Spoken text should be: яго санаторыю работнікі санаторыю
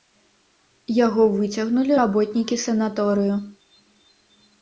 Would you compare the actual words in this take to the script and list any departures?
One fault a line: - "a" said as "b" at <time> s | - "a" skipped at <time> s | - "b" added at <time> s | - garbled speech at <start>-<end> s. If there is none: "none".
- "санаторыю" said as "выцягнулі" at 1.3 s